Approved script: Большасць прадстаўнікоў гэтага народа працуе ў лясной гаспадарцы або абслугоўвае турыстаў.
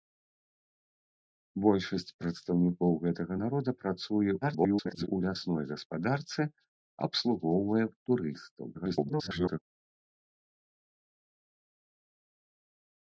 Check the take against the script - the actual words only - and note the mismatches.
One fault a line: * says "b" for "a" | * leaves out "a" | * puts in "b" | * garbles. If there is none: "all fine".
* garbles
* leaves out "або"
* garbles